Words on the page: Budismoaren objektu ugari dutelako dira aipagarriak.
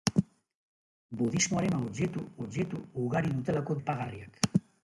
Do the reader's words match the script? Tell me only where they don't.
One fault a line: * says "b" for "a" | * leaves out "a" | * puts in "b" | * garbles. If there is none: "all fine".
* puts in "objektu"
* leaves out "dira"